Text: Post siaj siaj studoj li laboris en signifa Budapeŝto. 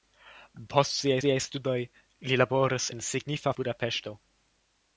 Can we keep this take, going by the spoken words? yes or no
yes